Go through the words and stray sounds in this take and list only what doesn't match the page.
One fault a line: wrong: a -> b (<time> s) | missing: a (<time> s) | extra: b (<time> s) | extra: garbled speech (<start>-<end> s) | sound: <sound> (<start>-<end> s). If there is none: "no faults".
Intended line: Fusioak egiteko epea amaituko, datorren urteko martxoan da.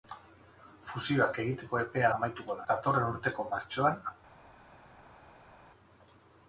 no faults